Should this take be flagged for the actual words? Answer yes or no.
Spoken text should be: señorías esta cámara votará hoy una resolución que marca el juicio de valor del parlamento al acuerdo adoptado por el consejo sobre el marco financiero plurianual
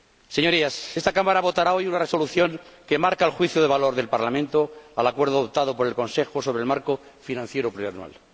no